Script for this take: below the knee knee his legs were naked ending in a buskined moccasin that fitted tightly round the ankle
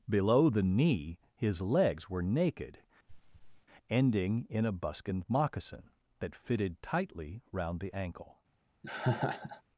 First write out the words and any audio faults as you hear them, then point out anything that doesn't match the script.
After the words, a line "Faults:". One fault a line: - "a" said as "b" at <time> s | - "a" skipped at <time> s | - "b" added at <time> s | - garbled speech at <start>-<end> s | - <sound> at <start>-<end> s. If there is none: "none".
below the knee his legs were naked ending in a buskined moccasin that fitted tightly round the ankle
Faults:
- "knee" skipped at 1.2 s
- throat clearing at 3.1-3.7 s
- laugh at 8.8-9.6 s